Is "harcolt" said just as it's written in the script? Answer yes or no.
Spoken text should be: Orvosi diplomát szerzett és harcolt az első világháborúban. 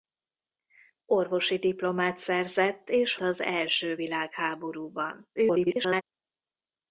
no